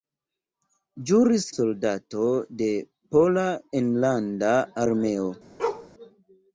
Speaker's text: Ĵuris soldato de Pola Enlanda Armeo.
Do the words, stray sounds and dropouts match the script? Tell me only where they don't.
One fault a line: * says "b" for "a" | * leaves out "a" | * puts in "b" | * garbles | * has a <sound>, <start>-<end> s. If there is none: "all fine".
* has a bark, 5.6-5.9 s